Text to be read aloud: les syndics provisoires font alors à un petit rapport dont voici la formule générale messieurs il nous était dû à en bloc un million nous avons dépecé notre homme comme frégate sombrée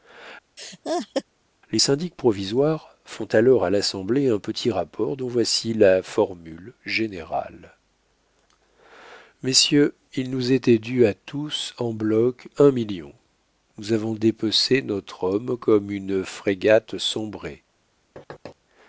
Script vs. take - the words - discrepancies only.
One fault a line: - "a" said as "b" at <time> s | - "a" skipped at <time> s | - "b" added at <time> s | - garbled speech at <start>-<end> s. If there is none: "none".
- "l'assemblée" added at 3.7 s
- "tous" added at 11.1 s
- "une" added at 15.9 s